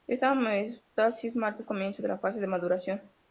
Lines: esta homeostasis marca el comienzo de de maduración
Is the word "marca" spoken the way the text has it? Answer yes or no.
yes